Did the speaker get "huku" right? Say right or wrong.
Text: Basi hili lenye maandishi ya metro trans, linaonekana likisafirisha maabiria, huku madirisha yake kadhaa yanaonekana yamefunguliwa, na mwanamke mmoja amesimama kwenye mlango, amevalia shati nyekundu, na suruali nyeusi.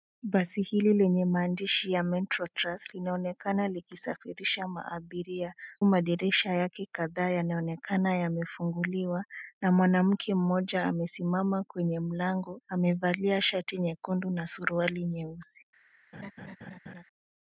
wrong